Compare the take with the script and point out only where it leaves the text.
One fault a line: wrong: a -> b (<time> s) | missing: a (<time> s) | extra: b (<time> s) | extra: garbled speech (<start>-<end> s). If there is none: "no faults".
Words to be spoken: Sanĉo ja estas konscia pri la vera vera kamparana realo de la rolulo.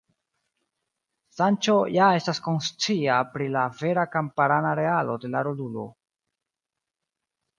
missing: vera (4.0 s)